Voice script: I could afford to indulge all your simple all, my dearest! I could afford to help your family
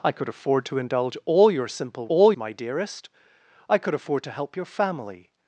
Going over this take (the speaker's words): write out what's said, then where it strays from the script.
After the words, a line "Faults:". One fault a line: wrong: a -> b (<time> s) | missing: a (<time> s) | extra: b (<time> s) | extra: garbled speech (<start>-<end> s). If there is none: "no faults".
I could afford to indulge all your simple all, my dearest! I could afford to help your family
Faults:
no faults